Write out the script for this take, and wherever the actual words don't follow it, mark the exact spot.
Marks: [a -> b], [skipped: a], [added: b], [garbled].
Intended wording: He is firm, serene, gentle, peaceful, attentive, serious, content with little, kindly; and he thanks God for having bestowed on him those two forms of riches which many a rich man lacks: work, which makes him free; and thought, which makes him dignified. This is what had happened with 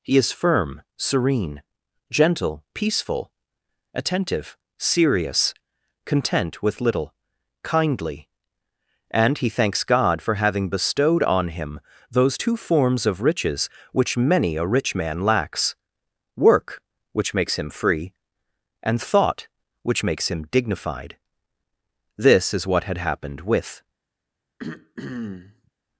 He is firm, serene, gentle, peaceful, attentive, serious, content with little, kindly; and he thanks God for having bestowed on him those two forms of riches which many a rich man lacks: work, which makes him free; and thought, which makes him dignified. This is what had happened with